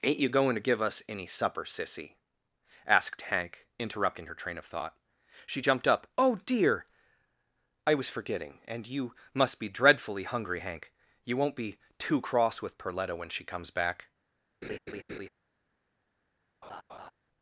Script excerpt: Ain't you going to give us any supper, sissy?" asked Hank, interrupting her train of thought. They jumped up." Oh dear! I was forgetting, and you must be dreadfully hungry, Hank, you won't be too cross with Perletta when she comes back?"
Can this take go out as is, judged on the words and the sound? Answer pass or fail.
fail